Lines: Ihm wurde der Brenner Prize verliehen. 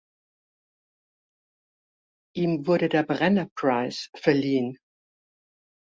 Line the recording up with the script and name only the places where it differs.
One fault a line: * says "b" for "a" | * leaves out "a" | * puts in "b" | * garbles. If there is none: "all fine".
all fine